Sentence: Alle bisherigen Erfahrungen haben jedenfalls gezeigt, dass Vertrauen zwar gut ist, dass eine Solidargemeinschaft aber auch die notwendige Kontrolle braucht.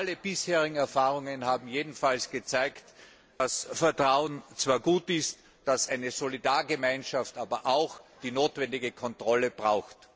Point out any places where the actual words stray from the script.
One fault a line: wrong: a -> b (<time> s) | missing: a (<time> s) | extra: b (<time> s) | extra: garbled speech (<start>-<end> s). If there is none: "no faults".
no faults